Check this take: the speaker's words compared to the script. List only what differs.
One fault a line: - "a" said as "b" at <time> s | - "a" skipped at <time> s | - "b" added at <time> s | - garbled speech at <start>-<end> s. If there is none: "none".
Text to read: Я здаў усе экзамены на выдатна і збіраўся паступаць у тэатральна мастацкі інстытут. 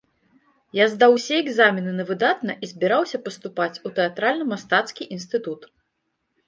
none